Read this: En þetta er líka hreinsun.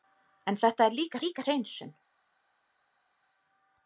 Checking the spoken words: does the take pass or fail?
fail